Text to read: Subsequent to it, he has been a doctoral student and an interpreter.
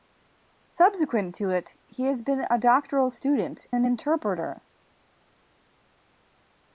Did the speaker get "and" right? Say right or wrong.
wrong